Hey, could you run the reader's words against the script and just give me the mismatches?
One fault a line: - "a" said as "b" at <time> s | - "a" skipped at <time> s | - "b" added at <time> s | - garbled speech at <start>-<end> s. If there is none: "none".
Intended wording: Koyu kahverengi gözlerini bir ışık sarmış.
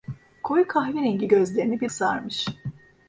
- "ışık" skipped at 1.9 s